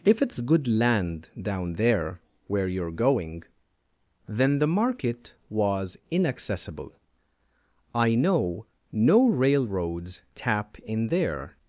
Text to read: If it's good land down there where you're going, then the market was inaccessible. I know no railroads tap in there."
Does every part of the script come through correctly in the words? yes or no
yes